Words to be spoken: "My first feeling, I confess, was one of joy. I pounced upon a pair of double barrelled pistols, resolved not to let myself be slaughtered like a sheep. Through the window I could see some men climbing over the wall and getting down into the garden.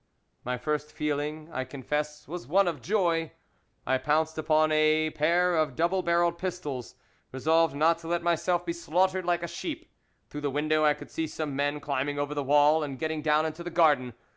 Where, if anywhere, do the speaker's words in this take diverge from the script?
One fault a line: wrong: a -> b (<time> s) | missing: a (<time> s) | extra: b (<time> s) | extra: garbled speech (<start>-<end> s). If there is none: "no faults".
no faults